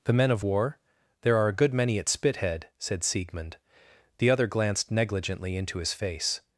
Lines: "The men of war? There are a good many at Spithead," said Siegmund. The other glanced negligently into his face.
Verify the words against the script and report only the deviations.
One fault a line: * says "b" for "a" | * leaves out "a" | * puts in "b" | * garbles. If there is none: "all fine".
all fine